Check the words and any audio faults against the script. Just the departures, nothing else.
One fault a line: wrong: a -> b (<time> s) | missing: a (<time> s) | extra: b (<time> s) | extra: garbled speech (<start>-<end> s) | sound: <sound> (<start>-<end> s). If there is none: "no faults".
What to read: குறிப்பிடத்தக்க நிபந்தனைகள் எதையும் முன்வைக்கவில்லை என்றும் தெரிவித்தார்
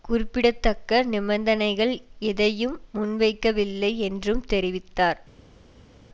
no faults